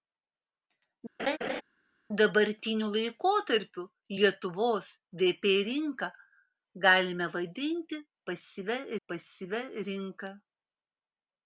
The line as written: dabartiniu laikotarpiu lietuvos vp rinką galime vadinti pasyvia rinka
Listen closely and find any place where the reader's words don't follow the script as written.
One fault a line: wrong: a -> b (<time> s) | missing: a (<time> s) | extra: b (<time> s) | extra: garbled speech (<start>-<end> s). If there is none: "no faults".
extra: pasyvia (9.1 s)